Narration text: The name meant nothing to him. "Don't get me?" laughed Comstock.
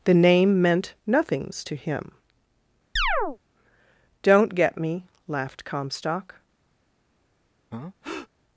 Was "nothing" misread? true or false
true